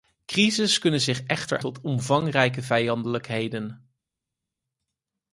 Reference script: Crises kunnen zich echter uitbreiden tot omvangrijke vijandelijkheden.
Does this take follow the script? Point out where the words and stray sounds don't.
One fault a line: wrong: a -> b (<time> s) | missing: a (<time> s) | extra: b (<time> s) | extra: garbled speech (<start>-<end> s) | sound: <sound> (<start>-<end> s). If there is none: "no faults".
missing: uitbreiden (1.6 s)